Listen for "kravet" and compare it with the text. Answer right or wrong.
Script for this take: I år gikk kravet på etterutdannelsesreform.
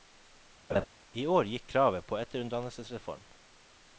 right